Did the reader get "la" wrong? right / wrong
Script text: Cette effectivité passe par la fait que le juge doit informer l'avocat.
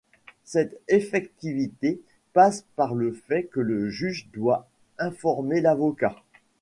wrong